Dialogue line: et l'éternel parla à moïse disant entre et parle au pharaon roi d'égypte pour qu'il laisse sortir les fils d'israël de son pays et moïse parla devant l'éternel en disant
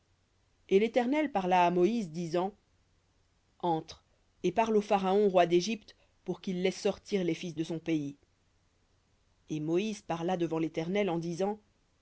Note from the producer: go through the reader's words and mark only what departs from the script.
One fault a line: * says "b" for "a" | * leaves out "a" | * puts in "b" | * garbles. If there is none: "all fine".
* leaves out "d'israël"